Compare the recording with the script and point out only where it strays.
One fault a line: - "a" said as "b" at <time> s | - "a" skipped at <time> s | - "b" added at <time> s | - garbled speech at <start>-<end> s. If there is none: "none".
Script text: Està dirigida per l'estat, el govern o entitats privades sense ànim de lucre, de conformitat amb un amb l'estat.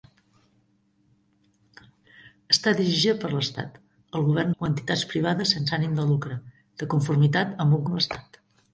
none